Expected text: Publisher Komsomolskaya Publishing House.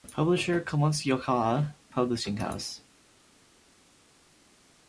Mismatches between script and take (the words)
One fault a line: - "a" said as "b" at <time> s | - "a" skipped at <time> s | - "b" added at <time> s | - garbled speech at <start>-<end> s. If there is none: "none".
none